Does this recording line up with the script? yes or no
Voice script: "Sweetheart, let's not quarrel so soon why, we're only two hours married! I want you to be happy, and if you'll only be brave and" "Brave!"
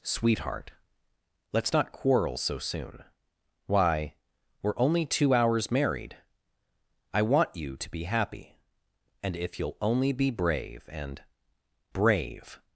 yes